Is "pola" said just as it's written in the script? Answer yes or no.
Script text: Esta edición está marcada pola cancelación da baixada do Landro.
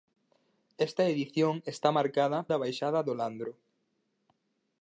no